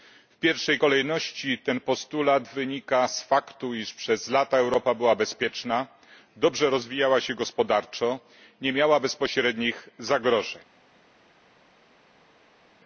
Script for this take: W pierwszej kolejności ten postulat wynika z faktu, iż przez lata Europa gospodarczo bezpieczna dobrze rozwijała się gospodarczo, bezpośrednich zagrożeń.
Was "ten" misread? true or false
false